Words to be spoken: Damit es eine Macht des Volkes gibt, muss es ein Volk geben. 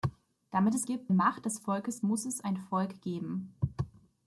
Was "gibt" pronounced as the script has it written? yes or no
no